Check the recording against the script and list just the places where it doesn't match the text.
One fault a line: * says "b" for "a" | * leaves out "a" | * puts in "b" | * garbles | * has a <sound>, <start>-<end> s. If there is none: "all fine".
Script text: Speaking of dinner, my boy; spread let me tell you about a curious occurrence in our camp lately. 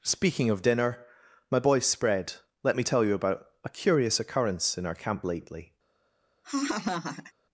* has a laugh, 6.4-7.3 s